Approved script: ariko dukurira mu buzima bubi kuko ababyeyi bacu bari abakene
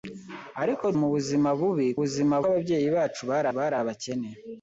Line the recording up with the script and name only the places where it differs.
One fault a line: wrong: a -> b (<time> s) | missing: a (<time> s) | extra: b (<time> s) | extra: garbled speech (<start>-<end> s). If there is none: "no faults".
missing: dukurira (0.8 s)
wrong: kuko -> buzima (2.0 s)
extra: bari (3.6 s)